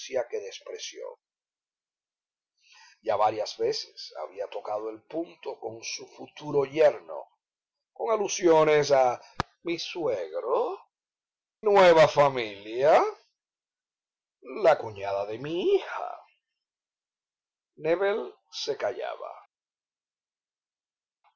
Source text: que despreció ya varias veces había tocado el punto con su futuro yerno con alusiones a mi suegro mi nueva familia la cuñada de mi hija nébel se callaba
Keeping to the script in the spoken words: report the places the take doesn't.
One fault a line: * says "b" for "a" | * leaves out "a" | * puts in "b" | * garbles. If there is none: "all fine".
* leaves out "mi"